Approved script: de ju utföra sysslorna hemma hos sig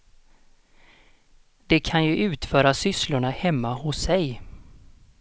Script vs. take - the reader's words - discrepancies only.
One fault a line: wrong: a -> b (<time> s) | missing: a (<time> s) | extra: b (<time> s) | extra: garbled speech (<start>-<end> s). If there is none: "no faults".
extra: kan (1.8 s)